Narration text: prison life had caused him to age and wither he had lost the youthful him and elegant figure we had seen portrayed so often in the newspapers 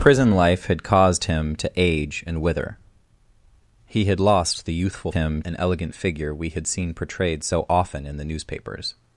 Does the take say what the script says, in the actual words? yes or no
yes